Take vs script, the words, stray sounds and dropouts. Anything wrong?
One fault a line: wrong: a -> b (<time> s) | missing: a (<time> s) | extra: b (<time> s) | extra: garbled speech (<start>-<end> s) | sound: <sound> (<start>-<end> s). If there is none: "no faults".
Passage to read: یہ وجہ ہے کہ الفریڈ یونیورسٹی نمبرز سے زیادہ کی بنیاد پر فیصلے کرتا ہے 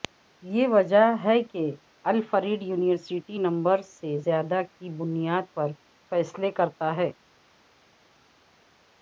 no faults